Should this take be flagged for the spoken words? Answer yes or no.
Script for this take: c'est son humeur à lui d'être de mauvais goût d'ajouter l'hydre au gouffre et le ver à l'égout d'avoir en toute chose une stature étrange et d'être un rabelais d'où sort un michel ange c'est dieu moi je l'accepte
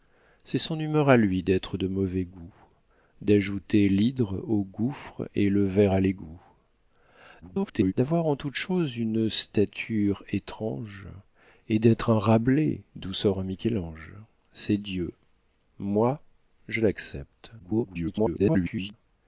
yes